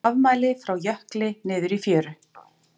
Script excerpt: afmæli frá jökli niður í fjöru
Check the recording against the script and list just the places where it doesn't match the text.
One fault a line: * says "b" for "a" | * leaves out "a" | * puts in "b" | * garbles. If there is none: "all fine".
all fine